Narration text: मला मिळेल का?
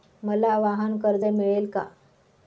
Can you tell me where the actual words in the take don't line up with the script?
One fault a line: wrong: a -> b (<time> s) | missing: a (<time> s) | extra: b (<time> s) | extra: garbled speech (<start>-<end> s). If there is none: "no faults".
extra: वाहनकर्ज (0.6 s)